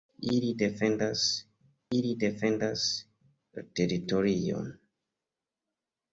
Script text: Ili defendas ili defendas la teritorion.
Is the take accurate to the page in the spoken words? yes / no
yes